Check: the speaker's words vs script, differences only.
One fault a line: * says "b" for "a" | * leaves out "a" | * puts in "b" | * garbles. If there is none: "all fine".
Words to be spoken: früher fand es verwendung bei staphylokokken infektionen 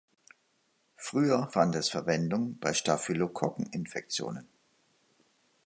all fine